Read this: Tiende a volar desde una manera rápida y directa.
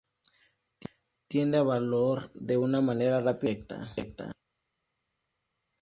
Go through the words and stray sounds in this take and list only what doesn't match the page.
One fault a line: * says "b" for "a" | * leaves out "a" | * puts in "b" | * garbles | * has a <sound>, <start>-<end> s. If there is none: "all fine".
* says "de" for "desde"